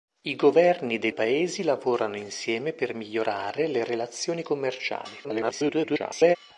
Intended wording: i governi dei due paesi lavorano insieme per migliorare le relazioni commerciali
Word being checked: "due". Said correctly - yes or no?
no